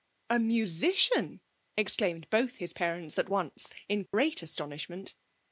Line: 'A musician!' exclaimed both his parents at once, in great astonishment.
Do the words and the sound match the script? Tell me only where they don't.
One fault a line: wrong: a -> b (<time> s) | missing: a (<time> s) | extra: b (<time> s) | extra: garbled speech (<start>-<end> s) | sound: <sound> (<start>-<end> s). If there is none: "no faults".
sound: dropout (4.1-4.1 s)